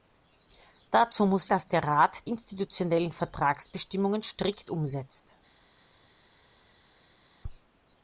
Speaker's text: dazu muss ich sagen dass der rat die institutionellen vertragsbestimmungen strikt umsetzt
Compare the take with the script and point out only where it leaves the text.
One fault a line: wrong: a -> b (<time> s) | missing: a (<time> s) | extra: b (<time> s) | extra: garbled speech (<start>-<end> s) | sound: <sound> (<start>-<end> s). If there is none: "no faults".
missing: ich sagen (1.5 s)
missing: die (2.3 s)